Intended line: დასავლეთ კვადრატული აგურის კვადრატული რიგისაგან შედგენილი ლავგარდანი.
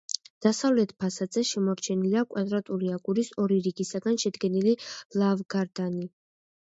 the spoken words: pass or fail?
fail